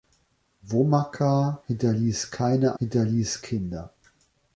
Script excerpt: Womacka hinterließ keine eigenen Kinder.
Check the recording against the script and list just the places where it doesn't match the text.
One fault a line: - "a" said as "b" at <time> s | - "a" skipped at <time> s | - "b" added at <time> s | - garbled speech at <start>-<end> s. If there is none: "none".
- "eigenen" said as "hinterließ" at 2.8 s